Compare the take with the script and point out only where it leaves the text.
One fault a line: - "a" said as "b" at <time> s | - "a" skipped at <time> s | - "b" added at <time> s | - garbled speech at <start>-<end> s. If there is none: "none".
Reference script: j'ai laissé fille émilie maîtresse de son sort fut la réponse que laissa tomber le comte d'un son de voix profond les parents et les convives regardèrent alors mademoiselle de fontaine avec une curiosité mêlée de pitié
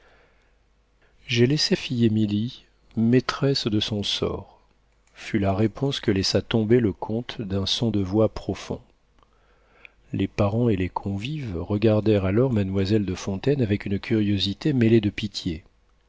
none